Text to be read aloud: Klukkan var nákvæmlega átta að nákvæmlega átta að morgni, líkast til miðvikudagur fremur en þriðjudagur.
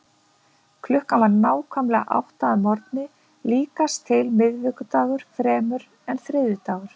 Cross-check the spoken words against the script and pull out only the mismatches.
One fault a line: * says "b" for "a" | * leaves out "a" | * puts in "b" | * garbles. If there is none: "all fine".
* leaves out "nákvæmlega átta að"